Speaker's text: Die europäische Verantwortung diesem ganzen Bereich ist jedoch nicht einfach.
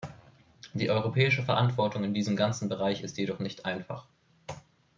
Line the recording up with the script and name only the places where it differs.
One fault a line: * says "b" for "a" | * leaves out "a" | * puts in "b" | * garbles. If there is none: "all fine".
* puts in "in"